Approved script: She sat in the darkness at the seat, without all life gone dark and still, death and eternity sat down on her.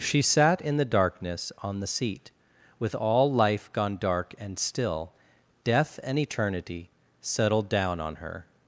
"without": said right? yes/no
no